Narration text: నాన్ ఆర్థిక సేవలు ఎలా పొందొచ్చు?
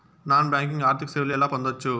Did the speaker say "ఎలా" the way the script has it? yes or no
yes